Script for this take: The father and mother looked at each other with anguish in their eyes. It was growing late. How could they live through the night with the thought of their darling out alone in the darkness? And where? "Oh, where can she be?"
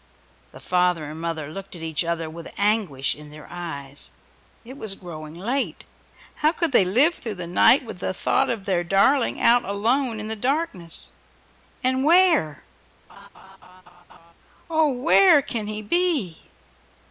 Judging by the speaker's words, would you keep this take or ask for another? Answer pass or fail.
fail